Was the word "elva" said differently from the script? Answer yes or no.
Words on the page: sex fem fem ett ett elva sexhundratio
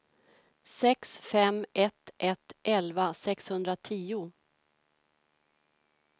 no